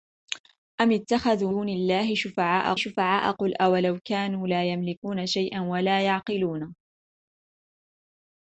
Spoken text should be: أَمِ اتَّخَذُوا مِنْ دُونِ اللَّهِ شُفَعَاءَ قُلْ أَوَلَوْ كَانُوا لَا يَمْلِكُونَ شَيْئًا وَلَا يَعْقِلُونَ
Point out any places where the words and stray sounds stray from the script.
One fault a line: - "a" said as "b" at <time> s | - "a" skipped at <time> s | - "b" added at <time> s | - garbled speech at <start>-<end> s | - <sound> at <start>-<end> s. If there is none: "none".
- "مِنْ" skipped at 1.5 s
- "شُفَعَاءَ" added at 2.8 s